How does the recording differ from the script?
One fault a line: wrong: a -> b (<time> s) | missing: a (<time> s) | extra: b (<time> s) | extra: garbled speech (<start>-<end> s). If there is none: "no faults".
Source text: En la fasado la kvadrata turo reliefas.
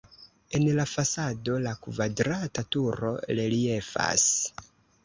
no faults